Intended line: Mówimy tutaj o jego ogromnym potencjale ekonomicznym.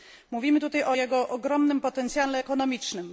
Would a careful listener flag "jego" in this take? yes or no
no